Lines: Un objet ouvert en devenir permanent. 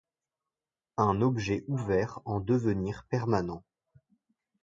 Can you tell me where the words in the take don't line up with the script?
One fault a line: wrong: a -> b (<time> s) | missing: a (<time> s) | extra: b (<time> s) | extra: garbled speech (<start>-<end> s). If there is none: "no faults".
no faults